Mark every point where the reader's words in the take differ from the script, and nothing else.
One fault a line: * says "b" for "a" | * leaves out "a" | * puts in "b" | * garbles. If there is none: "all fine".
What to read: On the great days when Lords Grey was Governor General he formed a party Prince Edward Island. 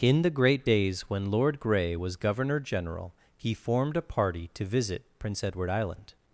* says "In" for "On"
* says "Lord" for "Lords"
* puts in "to visit"